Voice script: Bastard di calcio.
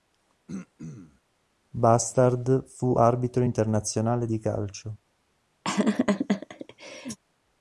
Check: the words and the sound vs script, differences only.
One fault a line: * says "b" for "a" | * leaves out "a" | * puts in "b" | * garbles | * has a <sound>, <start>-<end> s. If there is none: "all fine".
* has a throat clearing, 0.5-1.2 s
* puts in "fu arbitro internazionale"
* has a laugh, 5.6-7.2 s